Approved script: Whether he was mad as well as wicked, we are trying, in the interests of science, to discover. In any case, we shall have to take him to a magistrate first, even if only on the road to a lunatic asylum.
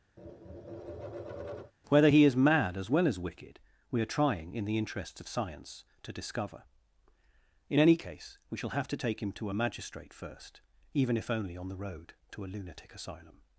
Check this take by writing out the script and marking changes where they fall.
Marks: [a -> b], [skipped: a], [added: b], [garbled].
Whether he [was -> is] mad as well as wicked, we are trying, in the interests of science, to discover. In any case, we shall have to take him to a magistrate first, even if only on the road to a lunatic asylum.